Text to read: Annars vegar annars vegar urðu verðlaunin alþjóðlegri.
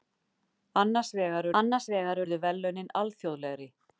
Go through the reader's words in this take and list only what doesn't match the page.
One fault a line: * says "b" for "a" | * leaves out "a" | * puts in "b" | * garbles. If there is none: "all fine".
all fine